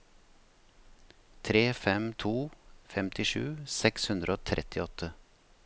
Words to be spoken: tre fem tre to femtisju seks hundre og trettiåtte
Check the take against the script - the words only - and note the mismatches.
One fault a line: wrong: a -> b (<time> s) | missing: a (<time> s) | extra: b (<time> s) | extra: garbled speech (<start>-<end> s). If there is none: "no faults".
missing: tre (2.1 s)